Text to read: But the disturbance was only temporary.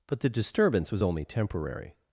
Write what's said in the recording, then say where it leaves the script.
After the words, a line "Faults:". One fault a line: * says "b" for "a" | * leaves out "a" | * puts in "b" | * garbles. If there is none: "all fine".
But the disturbance was only temporary.
Faults:
all fine